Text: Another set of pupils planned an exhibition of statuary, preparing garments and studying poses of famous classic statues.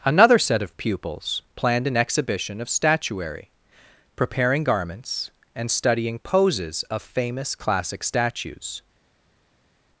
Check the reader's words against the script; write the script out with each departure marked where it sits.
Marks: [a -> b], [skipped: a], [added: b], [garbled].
Another set of pupils planned an exhibition of statuary, preparing garments and studying poses of famous classic statues.